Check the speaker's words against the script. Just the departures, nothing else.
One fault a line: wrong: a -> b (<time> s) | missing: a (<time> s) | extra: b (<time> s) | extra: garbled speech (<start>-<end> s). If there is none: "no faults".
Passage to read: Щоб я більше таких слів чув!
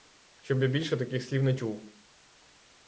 extra: не (1.4 s)